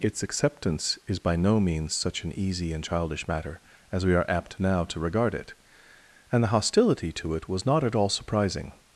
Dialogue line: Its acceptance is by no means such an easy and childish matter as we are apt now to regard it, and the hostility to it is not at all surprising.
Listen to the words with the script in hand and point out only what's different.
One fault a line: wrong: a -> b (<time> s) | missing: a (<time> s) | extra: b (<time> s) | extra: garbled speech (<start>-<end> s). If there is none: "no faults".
wrong: is -> was (7.5 s)